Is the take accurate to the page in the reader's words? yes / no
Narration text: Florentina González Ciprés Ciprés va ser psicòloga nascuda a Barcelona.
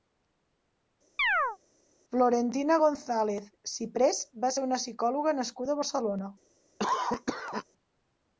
no